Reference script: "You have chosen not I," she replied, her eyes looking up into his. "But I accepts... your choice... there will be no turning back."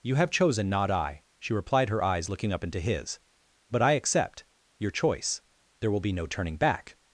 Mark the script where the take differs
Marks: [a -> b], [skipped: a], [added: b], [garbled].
"You have chosen not I," she replied, her eyes looking up into his. "But I [accepts... -> accept] your choice... there will be no turning back."